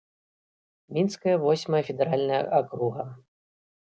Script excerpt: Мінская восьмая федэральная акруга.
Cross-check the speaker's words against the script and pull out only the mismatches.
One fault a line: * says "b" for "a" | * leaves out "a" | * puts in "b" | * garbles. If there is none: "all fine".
all fine